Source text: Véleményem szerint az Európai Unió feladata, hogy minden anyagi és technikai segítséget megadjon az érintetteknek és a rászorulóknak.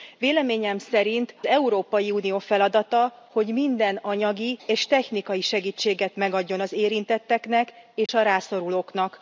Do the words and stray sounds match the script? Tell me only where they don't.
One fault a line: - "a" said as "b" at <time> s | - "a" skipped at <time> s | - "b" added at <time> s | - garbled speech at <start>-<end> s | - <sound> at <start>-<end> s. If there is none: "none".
- "az" skipped at 1.4 s
- dropout at 8.1-8.1 s